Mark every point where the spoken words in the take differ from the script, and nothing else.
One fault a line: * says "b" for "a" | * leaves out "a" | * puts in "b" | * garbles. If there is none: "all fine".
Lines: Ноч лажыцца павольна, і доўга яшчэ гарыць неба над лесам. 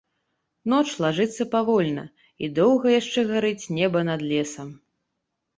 all fine